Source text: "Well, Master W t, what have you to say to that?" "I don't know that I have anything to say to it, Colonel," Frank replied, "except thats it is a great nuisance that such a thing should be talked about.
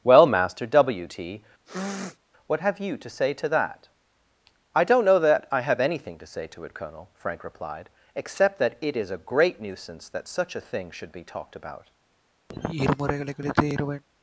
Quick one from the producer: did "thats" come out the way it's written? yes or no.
no